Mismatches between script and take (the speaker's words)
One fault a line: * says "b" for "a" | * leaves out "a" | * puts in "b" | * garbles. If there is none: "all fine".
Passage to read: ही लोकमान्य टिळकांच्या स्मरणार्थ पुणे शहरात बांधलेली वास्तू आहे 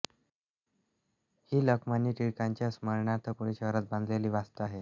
all fine